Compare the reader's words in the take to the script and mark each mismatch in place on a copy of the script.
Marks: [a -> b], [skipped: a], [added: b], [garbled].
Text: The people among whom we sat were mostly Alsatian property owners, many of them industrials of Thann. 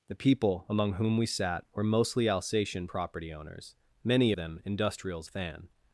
The people among whom we sat were mostly Alsatian property owners, many [skipped: of] them industrials [skipped: of] Thann.